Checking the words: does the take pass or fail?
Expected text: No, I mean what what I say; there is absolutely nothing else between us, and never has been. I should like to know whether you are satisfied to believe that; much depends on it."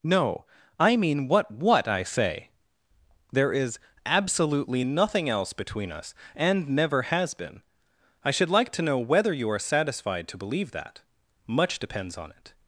pass